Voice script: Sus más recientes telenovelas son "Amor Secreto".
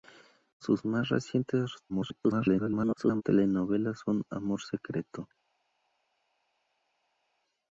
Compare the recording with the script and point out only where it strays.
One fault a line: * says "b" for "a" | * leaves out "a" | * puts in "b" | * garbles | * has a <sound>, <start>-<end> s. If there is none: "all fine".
* garbles